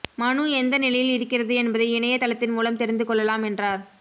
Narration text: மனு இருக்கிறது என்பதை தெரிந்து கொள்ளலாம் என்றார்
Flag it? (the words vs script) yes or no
yes